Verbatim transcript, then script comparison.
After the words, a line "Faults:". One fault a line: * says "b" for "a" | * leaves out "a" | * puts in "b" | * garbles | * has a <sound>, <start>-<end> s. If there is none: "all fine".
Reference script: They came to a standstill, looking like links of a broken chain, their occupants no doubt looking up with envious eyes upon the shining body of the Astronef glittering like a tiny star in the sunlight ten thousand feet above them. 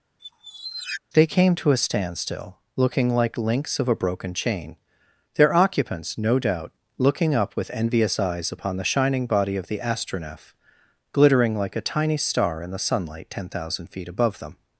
They came to a standstill, looking like links of a broken chain, their occupants no doubt looking up with envious eyes upon the shining body of the Astronef glittering like a tiny star in the sunlight ten thousand feet above them.
Faults:
* has a squeak, 0.2-1.0 s